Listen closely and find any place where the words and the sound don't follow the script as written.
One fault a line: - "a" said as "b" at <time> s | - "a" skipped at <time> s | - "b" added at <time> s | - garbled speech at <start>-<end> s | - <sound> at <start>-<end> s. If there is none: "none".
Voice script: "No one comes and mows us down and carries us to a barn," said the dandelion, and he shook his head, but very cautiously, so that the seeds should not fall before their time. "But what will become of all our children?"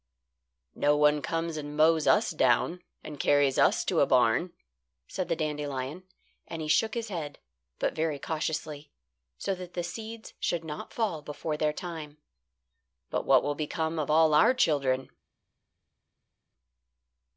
none